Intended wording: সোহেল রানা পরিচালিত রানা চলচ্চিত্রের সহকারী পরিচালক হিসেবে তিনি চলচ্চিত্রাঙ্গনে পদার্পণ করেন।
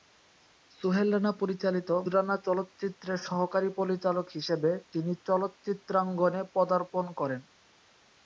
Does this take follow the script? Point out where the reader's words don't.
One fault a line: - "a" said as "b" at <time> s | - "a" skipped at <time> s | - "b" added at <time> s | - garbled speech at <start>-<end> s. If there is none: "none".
none